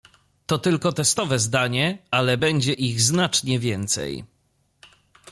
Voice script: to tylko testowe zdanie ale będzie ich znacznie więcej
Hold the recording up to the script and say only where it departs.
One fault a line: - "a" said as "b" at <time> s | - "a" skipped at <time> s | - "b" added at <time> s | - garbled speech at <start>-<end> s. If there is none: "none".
none